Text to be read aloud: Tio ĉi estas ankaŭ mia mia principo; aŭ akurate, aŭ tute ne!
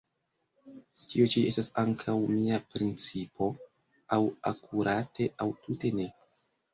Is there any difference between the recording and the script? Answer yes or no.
yes